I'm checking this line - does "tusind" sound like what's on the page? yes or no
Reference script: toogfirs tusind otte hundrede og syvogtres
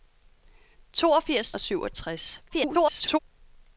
no